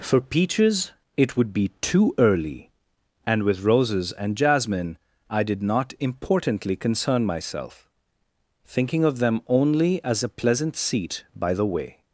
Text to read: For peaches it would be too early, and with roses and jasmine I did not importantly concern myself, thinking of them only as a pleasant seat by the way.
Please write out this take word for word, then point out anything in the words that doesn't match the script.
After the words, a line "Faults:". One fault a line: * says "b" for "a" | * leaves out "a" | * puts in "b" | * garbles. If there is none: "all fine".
For peaches it would be too early, and with roses and jasmine I did not importantly concern myself, thinking of them only as a pleasant seat by the way.
Faults:
all fine